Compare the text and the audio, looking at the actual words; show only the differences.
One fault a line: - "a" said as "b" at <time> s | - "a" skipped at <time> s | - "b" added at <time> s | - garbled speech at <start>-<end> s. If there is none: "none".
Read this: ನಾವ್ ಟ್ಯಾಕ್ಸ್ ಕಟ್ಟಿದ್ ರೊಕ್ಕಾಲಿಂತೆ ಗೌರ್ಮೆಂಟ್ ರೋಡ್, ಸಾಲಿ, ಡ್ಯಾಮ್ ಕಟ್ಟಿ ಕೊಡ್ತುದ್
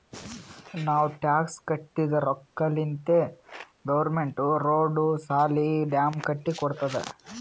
none